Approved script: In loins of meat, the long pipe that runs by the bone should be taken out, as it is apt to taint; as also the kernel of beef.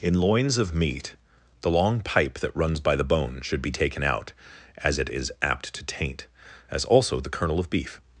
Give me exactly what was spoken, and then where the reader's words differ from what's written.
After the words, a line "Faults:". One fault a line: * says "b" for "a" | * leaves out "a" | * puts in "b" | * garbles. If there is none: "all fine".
In loins of meat, the long pipe that runs by the bone should be taken out, as it is apt to taint; as also the kernel of beef.
Faults:
all fine